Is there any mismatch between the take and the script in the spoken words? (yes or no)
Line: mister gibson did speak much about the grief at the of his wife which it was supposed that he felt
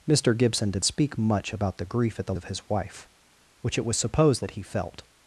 no